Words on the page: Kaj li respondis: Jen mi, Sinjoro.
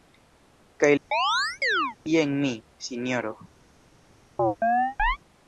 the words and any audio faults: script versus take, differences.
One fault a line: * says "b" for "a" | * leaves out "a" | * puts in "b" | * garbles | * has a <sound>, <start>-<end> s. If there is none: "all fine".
* leaves out "li respondis"
* has a chirp, 1.1-2.0 s
* has a chirp, 4.4-5.2 s